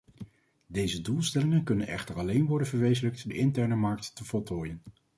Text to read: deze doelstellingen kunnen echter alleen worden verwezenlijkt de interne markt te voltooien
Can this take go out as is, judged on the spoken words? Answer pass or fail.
pass